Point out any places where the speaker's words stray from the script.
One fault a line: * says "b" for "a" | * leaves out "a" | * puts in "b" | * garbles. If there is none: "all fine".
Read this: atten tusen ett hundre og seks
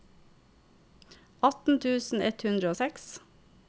all fine